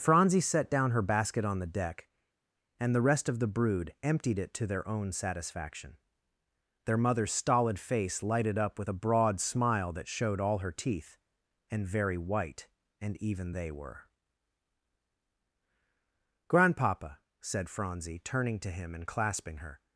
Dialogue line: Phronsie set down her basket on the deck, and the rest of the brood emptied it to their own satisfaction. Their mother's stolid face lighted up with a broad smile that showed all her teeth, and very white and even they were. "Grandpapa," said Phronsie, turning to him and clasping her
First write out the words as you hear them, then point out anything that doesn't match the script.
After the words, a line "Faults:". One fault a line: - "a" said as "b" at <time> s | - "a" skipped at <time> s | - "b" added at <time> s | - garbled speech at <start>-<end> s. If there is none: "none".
Phronsie set down her basket on the deck, and the rest of the brood emptied it to their own satisfaction. Their mother's stolid face lighted up with a broad smile that showed all her teeth, and very white and even they were. "Grandpapa," said Phronsie, turning to him and clasping her
Faults:
none